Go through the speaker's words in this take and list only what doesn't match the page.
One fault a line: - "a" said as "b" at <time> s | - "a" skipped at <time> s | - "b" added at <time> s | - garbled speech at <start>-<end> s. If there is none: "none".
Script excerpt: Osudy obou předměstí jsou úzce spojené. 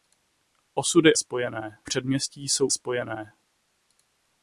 - "obou" said as "spojené" at 1.2 s
- "úzce" skipped at 2.7 s